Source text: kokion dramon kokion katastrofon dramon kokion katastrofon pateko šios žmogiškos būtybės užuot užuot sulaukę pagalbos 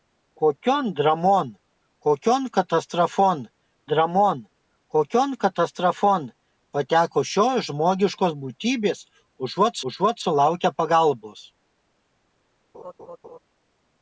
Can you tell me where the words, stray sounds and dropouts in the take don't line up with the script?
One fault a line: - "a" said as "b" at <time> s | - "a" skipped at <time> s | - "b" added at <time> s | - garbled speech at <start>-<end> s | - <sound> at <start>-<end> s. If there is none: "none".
- laugh at 12.7-13.4 s